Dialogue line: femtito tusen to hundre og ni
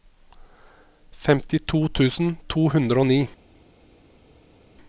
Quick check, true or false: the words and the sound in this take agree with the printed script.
true